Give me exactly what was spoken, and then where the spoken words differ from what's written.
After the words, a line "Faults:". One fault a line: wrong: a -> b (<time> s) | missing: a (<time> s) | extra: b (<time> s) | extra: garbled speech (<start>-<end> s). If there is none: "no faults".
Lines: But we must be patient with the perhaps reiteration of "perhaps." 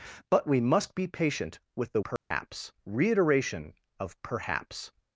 But we must be patient with the perhaps reiteration of "perhaps."
Faults:
no faults